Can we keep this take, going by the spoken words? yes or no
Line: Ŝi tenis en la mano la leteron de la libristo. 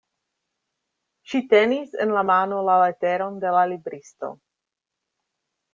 yes